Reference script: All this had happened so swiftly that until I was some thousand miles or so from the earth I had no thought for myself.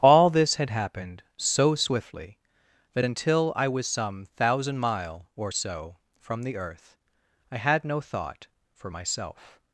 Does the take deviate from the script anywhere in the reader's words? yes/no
yes